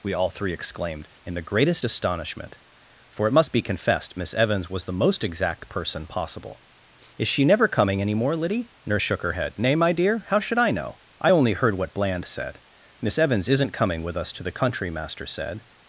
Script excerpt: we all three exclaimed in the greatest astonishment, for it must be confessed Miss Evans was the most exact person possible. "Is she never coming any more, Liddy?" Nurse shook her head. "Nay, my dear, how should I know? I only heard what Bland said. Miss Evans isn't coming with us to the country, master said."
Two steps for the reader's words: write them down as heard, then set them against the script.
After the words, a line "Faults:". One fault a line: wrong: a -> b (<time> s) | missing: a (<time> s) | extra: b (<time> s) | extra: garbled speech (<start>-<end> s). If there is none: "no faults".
we all three exclaimed in the greatest astonishment, for it must be confessed Miss Evans was the most exact person possible. "Is she never coming any more, Liddy?" Nurse shook her head. "Nay, my dear, how should I know? I only heard what Bland said. Miss Evans isn't coming with us to the country, master said."
Faults:
no faults